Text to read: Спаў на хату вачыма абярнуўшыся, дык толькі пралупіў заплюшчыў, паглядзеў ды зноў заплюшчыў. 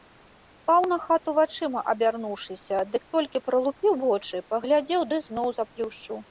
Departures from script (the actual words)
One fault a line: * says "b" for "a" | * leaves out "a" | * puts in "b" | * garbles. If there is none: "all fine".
* says "вочы" for "заплюшчыў"